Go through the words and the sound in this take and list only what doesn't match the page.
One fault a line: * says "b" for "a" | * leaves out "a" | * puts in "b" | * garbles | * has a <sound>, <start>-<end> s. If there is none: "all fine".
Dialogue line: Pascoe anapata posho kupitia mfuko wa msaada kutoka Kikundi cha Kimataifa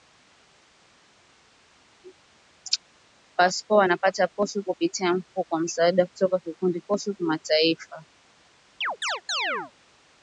* says "posho" for "cha"
* has a chirp, 8.8-9.7 s